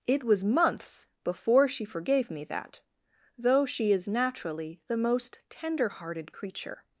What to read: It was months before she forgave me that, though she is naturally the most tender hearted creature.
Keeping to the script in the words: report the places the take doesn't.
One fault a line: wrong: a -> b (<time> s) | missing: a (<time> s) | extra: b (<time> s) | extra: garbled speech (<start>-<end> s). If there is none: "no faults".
no faults